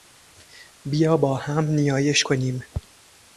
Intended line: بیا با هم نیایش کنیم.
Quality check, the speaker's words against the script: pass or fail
pass